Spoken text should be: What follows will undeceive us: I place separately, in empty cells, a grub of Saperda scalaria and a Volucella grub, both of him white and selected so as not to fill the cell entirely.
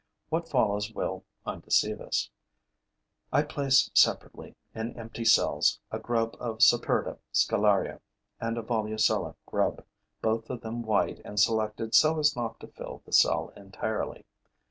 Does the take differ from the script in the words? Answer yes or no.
yes